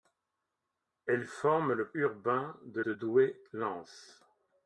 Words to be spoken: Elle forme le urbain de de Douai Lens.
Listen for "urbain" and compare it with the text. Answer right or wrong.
right